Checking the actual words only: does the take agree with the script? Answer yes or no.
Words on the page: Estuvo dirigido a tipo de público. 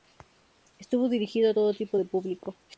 no